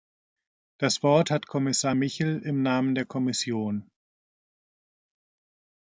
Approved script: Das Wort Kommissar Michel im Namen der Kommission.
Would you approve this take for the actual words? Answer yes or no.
no